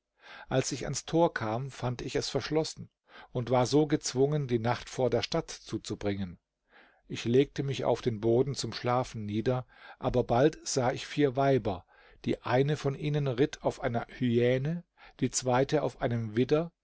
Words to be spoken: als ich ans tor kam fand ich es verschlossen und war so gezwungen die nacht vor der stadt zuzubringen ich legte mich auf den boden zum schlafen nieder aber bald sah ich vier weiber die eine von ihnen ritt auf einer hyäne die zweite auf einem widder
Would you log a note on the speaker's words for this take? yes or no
no